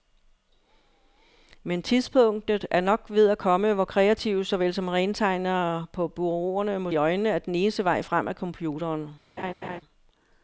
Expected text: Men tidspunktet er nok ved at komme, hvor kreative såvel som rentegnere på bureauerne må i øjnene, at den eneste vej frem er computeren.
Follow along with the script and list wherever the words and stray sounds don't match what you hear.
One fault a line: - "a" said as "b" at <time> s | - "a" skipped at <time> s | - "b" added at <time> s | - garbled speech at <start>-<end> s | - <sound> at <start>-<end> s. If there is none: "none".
- laugh at 9.4-9.8 s